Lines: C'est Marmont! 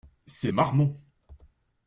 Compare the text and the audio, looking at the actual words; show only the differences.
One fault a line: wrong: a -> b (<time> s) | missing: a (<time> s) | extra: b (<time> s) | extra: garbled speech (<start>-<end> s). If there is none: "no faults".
no faults